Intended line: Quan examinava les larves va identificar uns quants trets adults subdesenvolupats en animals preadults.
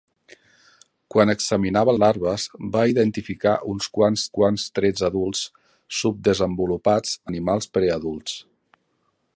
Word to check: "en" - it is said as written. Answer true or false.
false